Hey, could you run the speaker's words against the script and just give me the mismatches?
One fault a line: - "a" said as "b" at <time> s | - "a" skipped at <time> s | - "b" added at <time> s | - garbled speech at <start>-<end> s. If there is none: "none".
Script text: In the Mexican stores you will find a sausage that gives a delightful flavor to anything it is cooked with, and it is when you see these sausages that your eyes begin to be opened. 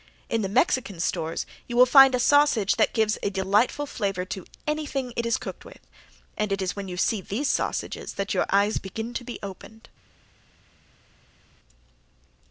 none